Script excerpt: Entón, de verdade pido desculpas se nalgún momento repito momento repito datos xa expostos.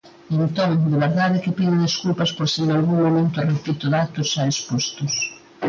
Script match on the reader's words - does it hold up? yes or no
no